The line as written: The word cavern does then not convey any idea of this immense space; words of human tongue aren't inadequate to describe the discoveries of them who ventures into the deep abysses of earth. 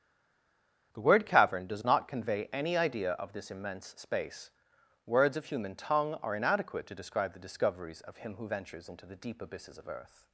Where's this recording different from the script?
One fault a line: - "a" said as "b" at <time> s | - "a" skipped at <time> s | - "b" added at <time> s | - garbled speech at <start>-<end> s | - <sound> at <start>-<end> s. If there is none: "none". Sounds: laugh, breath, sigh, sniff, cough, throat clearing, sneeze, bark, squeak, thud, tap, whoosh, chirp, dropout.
- "then" skipped at 1.9 s
- "aren't" said as "are" at 6.2 s
- "them" said as "him" at 8.2 s